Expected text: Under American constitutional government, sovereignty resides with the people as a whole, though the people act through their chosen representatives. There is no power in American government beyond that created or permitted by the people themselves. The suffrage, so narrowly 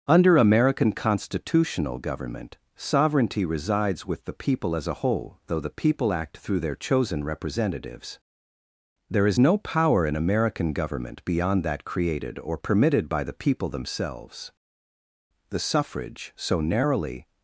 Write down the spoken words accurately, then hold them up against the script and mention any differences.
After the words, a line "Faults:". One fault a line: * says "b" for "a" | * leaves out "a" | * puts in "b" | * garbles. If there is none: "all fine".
Under American constitutional government, sovereignty resides with the people as a whole, though the people act through their chosen representatives. There is no power in American government beyond that created or permitted by the people themselves. The suffrage, so narrowly
Faults:
all fine